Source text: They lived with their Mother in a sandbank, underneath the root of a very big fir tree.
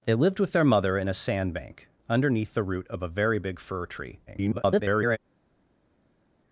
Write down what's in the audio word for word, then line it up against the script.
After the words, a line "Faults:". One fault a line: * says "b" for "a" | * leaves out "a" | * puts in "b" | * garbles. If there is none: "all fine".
They lived with their Mother in a sandbank, underneath the root of a very big fir tree. [garbled]
Faults:
* garbles